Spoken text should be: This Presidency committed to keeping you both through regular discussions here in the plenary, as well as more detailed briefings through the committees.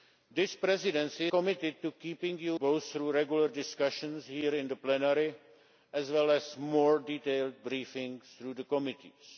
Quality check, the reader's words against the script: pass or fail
pass